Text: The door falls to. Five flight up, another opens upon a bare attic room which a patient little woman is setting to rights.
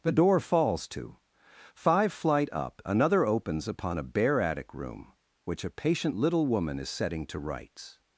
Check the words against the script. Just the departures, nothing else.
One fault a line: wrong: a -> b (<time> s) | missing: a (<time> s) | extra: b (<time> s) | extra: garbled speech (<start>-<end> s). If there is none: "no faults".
no faults